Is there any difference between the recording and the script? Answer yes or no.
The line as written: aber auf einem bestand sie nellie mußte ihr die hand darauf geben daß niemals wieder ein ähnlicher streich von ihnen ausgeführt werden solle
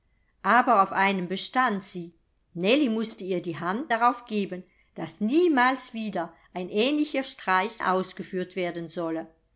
yes